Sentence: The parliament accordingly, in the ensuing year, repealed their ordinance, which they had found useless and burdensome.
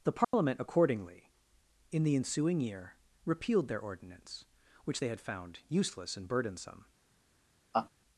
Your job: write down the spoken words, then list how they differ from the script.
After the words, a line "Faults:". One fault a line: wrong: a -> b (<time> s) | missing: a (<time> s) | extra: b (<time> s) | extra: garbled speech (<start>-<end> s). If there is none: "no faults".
The parliament accordingly, in the ensuing year, repealed their ordinance, which they had found useless and burdensome.
Faults:
no faults